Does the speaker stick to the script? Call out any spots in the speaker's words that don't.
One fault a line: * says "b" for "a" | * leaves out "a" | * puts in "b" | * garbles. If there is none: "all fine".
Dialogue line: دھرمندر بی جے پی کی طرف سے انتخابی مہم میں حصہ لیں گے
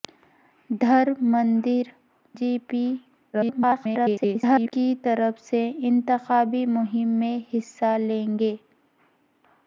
* leaves out "بی"
* garbles